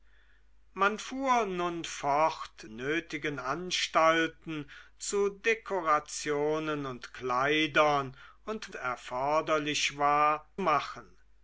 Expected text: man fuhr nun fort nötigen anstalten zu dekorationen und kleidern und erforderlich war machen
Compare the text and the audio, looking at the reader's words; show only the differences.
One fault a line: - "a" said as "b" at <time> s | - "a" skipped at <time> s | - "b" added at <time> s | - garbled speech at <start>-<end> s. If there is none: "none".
none